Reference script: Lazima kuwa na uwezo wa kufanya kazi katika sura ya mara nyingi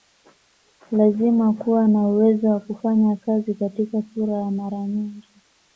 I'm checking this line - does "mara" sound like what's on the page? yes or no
yes